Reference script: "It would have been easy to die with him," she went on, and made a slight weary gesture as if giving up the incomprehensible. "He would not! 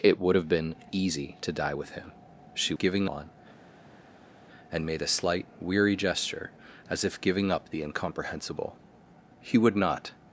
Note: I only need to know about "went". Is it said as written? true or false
false